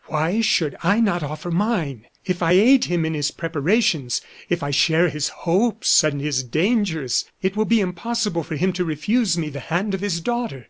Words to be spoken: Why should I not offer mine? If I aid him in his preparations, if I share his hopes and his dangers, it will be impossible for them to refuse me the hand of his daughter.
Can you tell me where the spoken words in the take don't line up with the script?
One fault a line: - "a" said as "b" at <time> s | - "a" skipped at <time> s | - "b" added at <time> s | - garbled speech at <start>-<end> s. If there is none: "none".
- "them" said as "him" at 8.6 s